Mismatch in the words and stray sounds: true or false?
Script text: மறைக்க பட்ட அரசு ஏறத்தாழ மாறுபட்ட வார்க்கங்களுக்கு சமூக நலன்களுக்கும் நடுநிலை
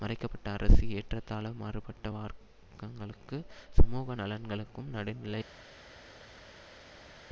false